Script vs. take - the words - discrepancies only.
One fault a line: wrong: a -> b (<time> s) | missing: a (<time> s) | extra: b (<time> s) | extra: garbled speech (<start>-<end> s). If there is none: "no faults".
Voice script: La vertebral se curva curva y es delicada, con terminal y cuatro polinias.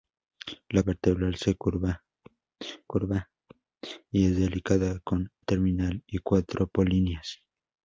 no faults